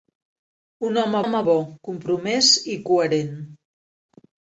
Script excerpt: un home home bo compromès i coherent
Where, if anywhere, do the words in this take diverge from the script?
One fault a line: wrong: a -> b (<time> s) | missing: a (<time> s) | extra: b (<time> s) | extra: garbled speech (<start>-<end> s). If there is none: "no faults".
no faults